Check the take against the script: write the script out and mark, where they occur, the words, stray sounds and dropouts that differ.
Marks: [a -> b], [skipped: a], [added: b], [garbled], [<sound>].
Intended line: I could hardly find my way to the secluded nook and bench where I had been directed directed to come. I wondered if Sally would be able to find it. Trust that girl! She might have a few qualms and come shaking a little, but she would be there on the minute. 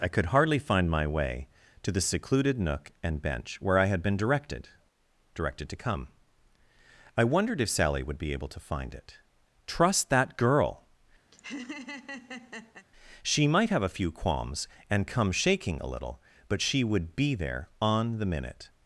I could hardly find my way to the secluded nook and bench where I had been directed directed to come. I wondered if Sally would be able to find it. Trust that girl! [laugh] She might have a few qualms and come shaking a little, but she would be there on the minute.